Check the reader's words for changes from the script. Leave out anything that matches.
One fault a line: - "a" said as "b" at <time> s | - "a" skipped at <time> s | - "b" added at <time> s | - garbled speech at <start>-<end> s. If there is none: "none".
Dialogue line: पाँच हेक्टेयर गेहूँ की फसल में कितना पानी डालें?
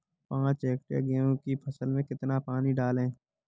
none